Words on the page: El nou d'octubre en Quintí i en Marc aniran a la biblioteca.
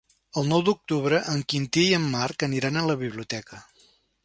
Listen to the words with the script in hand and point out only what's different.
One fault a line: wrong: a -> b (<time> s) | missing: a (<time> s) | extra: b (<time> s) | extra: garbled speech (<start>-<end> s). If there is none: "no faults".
no faults